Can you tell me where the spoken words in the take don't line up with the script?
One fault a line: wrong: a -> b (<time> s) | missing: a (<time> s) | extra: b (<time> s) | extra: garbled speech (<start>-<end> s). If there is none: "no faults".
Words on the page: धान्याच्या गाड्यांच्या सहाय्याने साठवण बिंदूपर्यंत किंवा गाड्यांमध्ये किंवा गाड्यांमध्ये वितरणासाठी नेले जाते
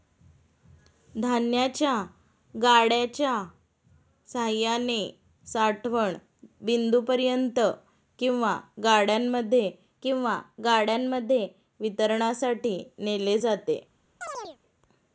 no faults